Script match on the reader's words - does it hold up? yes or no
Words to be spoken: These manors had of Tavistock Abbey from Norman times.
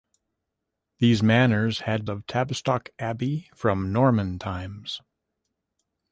yes